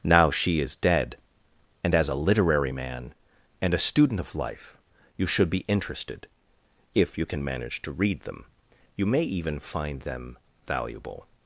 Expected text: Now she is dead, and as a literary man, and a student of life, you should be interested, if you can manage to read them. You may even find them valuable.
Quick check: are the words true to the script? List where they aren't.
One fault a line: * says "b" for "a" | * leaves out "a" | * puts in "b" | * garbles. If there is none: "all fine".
all fine